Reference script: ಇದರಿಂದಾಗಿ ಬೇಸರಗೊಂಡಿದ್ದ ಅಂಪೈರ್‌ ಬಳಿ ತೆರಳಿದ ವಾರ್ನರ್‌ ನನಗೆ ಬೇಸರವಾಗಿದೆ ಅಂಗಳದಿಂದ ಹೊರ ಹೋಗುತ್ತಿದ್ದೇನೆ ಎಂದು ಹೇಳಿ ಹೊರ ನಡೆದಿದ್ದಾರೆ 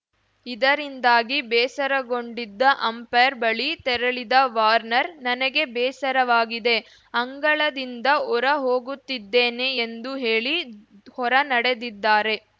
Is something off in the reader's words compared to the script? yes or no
no